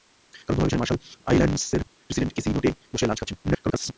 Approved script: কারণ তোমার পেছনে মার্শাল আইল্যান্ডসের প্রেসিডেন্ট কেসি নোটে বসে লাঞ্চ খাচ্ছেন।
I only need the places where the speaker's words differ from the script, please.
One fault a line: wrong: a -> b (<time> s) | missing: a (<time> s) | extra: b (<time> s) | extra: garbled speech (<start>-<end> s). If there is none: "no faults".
extra: garbled speech (3.4-3.9 s)